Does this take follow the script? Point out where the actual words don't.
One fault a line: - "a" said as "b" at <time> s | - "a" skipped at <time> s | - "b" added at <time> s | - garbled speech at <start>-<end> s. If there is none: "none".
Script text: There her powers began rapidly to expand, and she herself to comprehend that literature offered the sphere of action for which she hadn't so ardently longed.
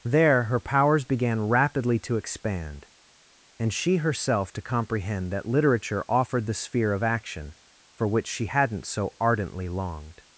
none